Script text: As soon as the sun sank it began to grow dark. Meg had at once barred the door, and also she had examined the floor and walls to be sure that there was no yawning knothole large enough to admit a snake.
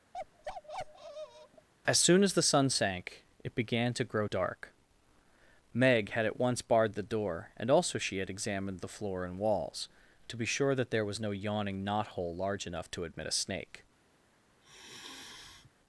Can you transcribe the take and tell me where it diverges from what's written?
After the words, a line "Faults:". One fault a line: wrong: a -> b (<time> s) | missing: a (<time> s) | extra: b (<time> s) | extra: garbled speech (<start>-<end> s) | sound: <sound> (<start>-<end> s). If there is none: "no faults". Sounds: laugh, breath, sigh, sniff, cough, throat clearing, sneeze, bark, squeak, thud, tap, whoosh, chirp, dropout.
As soon as the sun sank it began to grow dark. Meg had at once barred the door, and also she had examined the floor and walls to be sure that there was no yawning knothole large enough to admit a snake.
Faults:
sound: bark (0.1-1.7 s)
sound: sigh (14.6-15.7 s)